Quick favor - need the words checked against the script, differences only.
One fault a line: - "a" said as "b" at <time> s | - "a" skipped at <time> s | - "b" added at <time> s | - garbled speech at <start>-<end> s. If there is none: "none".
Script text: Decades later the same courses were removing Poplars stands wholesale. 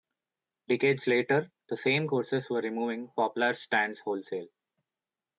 none